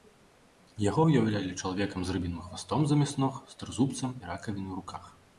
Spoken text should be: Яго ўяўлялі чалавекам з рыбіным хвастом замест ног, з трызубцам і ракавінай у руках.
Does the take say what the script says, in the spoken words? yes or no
yes